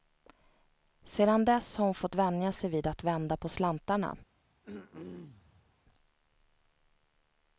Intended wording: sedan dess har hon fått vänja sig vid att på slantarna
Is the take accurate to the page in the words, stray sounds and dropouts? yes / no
no